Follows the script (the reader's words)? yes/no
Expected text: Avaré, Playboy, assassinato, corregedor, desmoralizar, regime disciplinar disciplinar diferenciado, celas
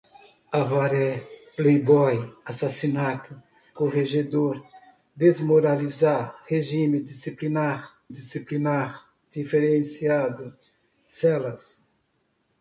yes